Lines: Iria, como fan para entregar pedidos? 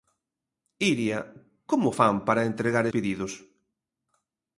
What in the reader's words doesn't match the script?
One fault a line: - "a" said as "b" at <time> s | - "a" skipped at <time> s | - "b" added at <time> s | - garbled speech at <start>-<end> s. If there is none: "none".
none